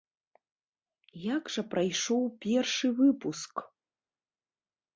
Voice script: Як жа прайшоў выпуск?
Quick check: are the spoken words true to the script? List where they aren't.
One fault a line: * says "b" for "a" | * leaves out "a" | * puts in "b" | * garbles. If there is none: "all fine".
* puts in "першы"